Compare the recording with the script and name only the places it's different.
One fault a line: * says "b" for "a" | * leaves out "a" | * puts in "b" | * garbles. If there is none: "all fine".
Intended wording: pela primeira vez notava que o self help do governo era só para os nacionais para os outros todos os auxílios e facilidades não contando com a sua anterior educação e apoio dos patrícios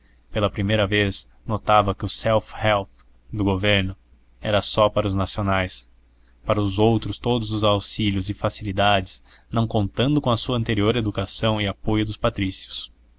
all fine